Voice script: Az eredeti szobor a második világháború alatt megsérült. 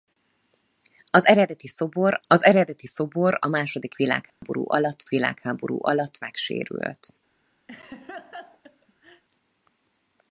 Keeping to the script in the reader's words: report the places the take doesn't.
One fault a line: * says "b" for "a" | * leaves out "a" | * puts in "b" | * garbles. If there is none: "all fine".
* puts in "az eredeti szobor"
* puts in "világháború alatt"